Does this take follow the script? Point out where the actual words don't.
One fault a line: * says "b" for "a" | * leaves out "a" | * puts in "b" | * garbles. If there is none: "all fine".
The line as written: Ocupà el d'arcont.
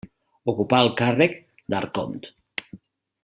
* puts in "càrrec"